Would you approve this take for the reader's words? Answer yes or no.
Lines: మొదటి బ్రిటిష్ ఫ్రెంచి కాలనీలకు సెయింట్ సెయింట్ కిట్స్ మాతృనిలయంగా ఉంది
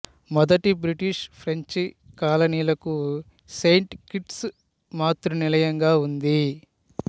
no